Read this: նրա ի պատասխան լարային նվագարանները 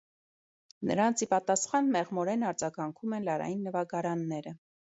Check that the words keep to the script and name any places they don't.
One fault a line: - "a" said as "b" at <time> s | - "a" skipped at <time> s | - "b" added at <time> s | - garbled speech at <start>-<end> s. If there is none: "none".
- "նրա" said as "նրանց" at 0.9 s
- "մեղմորեն արձագանքում են" added at 2.0 s